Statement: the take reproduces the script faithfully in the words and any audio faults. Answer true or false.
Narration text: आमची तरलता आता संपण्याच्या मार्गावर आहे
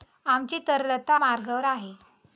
false